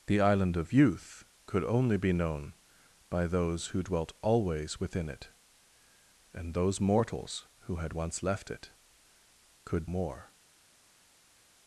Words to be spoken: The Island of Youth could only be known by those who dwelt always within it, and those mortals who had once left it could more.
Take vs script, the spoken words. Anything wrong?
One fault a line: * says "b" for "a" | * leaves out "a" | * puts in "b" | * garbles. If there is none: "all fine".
all fine